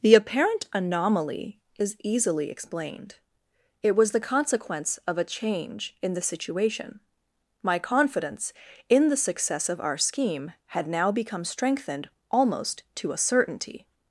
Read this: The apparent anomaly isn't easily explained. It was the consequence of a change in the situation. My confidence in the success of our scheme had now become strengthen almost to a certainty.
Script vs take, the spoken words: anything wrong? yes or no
yes